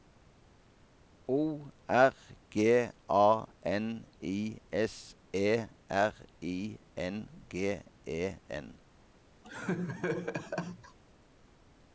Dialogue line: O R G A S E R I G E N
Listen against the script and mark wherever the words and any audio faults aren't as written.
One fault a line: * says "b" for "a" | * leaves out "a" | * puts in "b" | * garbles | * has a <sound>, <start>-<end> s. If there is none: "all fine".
* puts in "N I"
* puts in "N"
* has a laugh, 9.4-11.0 s